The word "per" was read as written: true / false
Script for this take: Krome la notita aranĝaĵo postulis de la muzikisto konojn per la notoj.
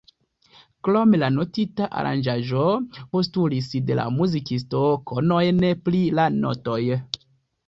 false